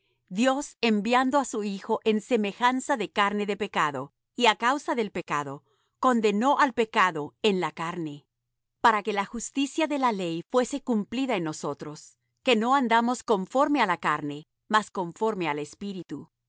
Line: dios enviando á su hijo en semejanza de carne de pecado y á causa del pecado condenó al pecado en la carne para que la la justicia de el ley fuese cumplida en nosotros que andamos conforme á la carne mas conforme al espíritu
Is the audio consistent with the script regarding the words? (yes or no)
no